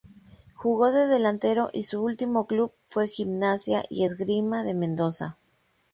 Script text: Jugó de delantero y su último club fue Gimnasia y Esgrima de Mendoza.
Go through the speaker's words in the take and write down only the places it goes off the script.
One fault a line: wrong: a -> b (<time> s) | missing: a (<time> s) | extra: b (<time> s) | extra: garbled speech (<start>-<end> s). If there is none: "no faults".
no faults